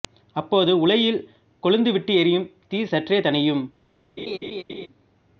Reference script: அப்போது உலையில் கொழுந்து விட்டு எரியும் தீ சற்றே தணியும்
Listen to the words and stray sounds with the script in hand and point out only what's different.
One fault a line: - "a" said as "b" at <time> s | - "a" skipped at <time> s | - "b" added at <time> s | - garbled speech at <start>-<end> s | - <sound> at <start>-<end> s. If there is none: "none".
- laugh at 4.2-4.9 s